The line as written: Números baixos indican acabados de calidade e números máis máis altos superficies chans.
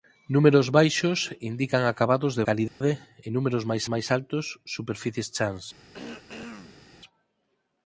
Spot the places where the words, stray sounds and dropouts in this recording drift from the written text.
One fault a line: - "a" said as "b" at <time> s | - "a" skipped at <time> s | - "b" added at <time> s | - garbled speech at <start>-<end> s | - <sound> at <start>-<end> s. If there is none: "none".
- dropout at 2.7-2.8 s
- throat clearing at 5.9-6.9 s